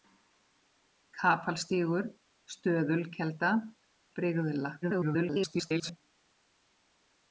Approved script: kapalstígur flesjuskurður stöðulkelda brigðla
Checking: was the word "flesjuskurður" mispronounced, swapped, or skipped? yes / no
yes